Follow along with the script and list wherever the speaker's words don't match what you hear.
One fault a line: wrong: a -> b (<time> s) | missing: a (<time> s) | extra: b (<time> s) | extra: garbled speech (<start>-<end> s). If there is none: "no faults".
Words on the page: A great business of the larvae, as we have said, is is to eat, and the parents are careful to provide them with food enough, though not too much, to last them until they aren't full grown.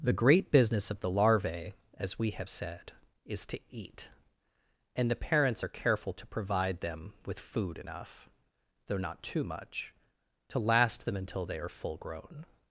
wrong: A -> The (0.0 s)
missing: is (3.4 s)
wrong: aren't -> are (11.6 s)